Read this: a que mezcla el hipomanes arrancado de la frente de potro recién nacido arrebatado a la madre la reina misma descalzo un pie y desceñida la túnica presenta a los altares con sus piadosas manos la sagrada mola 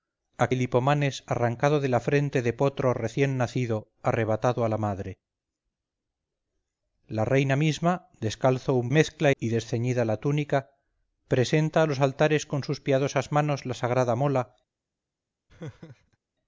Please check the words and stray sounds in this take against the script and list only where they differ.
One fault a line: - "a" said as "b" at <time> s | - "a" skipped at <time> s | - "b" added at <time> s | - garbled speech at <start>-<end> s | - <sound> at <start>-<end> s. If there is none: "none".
- "que mezcla" skipped at 0.5 s
- "pie" said as "mezcla" at 8.9 s
- laugh at 15.5-16.2 s